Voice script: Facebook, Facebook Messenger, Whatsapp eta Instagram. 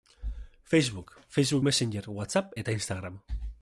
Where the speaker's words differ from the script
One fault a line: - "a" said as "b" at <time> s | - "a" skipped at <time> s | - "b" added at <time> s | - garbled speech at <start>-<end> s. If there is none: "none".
none